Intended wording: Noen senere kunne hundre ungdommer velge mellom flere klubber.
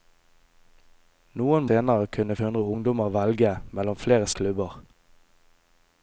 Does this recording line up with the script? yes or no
yes